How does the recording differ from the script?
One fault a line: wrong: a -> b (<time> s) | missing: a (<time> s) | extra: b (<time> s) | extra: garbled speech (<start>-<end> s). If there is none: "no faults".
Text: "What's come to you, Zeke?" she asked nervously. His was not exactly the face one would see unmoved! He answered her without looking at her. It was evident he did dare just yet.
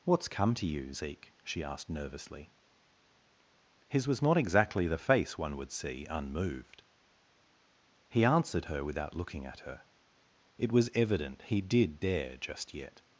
no faults